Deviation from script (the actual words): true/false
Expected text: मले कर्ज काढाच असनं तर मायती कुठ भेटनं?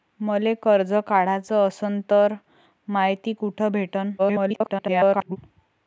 true